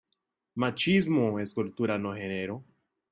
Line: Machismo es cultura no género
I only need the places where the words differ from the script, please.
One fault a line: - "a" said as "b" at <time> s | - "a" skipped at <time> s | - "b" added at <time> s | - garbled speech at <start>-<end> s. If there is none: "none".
none